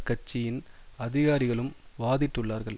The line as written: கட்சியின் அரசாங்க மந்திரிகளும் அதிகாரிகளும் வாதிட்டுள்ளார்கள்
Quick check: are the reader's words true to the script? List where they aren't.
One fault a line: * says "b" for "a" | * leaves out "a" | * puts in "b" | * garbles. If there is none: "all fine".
* leaves out "அரசாங்க மந்திரிகளும்"